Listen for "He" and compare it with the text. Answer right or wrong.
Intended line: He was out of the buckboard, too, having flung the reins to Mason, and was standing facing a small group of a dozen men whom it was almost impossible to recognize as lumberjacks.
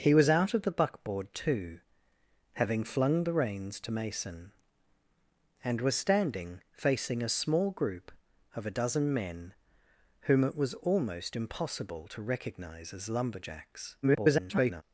right